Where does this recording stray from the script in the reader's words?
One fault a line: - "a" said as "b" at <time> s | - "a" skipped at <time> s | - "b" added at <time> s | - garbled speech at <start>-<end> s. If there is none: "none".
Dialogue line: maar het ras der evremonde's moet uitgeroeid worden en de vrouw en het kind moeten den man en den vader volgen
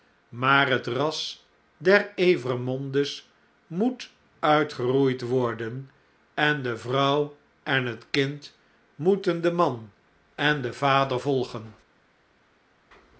none